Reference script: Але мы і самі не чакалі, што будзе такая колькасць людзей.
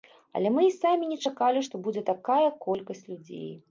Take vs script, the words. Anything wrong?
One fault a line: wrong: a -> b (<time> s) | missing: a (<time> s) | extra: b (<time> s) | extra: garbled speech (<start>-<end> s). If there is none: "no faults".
no faults